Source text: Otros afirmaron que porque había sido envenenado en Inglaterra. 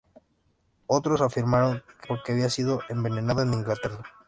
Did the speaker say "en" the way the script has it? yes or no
yes